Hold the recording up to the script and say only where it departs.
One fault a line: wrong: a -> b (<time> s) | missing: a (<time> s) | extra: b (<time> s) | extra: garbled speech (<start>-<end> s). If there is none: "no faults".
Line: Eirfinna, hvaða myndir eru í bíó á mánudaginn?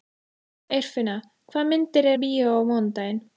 missing: eru (2.1 s)